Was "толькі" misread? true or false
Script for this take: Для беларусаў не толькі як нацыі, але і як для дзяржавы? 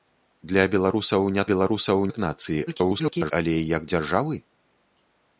true